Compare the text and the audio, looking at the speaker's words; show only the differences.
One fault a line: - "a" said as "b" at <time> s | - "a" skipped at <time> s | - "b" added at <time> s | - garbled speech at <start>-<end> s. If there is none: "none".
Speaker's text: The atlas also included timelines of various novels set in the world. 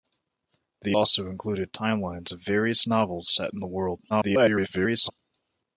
- "atlas" skipped at 1.0 s
- garbled speech at 4.1-5.1 s